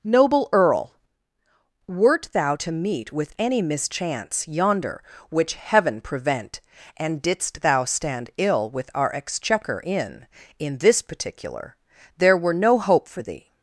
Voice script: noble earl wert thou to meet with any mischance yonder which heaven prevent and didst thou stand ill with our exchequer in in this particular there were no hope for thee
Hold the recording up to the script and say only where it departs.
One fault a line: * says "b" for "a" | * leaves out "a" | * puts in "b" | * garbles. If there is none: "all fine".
all fine